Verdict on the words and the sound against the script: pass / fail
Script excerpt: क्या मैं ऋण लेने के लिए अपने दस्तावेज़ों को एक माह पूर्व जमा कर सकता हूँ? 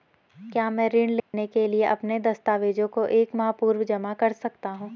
fail